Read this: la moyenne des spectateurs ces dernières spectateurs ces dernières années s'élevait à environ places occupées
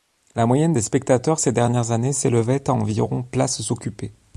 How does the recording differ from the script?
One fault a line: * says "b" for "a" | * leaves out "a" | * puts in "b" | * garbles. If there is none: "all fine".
* leaves out "spectateurs ces dernières"